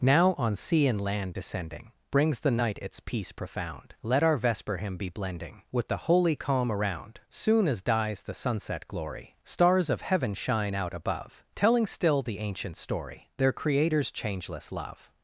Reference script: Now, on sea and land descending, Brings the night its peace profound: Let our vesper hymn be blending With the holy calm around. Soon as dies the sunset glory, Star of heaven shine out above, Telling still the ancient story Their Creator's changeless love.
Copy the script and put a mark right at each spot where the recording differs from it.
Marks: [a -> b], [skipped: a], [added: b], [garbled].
Now, on sea and land descending, Brings the night its peace profound: Let our vesper hymn be blending With the holy calm around. Soon as dies the sunset glory, [Star -> Stars] of heaven shine out above, Telling still the ancient story Their Creator's changeless love.